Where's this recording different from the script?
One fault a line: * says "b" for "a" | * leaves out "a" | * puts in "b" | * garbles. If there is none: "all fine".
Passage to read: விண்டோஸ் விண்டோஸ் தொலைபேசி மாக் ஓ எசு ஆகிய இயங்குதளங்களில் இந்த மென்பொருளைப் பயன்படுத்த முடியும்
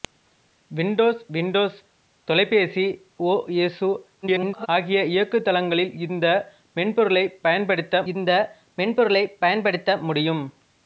* leaves out "மாக்"
* garbles
* puts in "இந்த மென்பொருளைப் பயன்படுத்த"